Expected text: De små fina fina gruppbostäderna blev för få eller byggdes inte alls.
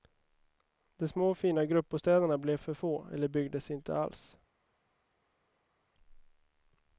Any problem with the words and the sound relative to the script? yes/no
yes